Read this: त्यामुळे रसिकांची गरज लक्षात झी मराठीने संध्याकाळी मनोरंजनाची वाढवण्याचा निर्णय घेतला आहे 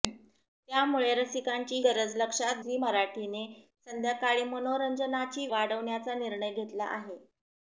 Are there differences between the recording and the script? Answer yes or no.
no